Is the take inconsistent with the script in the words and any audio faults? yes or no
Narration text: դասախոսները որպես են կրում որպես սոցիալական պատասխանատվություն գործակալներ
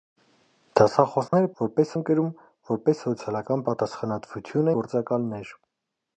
yes